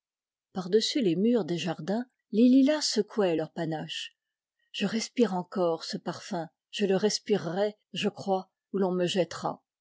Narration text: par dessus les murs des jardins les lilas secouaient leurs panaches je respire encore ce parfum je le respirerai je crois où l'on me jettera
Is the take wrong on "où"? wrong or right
right